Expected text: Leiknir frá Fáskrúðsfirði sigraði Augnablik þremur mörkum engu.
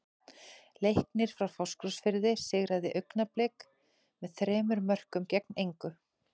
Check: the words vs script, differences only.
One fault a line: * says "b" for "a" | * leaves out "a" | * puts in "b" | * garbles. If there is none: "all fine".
* puts in "með"
* puts in "gegn"